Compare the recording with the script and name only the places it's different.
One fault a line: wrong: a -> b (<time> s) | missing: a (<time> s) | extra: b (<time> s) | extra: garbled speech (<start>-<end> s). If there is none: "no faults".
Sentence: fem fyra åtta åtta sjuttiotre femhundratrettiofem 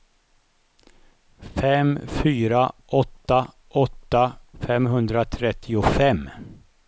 missing: sjuttiotre (4.3 s)